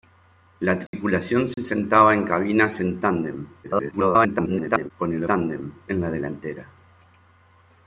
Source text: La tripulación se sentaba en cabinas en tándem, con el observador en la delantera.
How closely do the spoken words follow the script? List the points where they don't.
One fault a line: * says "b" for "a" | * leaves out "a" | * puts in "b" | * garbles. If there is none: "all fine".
* garbles
* says "tándem" for "observador"